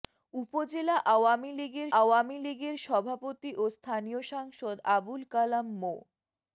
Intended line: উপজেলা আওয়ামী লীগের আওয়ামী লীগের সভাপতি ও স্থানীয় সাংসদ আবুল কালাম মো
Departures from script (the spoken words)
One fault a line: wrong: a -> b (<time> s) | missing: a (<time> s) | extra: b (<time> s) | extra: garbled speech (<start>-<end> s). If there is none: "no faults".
no faults